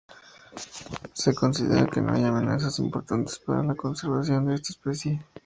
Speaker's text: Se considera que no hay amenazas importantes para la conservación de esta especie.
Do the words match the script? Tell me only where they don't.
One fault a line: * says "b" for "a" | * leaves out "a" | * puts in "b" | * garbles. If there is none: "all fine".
all fine